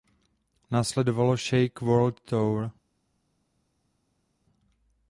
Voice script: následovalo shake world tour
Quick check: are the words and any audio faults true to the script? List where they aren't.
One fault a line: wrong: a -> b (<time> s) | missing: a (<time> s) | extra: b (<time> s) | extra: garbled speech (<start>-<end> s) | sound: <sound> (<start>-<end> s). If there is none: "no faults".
no faults